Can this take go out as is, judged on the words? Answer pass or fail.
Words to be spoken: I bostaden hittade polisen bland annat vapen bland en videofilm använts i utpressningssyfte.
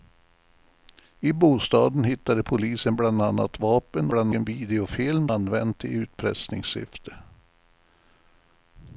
pass